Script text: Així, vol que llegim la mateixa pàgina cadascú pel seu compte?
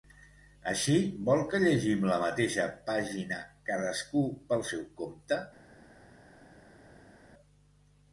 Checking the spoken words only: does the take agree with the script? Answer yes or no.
yes